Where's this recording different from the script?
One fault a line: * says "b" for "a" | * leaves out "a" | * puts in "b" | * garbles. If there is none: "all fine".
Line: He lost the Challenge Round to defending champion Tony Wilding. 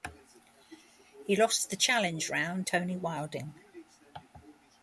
* leaves out "to defending champion"